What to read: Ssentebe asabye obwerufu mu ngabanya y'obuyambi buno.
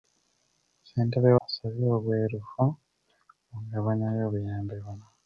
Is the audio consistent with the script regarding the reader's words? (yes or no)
yes